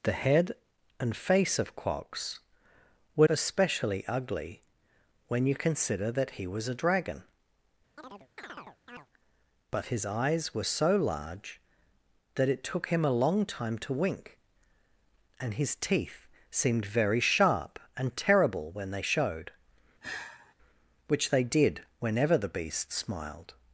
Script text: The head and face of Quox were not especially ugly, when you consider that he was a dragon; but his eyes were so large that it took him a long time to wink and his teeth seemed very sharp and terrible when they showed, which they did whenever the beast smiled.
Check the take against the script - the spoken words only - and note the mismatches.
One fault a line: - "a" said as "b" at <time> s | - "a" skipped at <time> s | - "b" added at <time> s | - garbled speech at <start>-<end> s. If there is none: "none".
- "not" skipped at 3.3 s